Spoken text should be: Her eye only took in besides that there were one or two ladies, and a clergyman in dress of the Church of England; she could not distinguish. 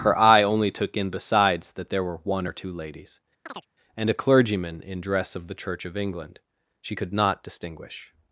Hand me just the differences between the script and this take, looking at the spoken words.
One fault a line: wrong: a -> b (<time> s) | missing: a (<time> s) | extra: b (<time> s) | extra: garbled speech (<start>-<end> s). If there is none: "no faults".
no faults